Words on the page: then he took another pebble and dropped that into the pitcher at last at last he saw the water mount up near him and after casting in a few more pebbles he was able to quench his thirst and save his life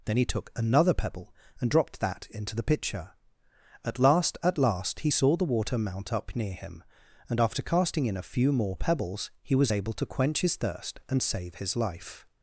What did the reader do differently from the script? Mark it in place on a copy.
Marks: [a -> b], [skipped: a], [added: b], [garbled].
then he took another pebble and dropped that into the pitcher at last at last he saw the water mount up near him and after casting in a few more pebbles he was able to quench his thirst and save his life